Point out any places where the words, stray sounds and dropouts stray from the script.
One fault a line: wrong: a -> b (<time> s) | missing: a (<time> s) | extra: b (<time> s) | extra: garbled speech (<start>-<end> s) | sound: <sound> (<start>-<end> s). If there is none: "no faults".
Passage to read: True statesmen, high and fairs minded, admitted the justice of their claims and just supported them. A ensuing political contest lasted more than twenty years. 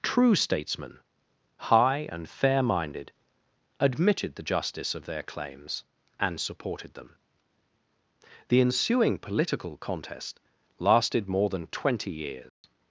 wrong: fairs -> fair (2.3 s)
missing: just (6.4 s)
wrong: A -> The (8.5 s)
sound: dropout (12.5-12.6 s)